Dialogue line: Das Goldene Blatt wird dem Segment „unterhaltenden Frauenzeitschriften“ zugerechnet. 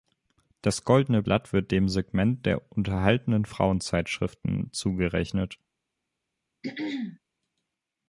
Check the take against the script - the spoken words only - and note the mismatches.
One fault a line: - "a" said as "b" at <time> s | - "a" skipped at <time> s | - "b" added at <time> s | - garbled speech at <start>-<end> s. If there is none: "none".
- "der" added at 2.5 s